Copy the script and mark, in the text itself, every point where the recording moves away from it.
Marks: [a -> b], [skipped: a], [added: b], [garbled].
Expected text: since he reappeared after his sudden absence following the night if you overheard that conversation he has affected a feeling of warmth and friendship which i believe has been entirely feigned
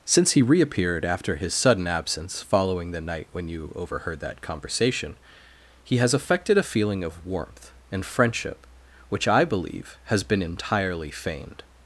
since he reappeared after his sudden absence following the night [if -> when] you overheard that conversation he has affected a feeling of warmth and friendship which i believe has been entirely feigned